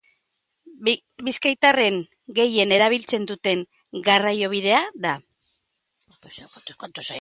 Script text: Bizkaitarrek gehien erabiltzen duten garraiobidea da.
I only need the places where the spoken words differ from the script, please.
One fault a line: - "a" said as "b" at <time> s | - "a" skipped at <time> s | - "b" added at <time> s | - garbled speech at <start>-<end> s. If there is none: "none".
none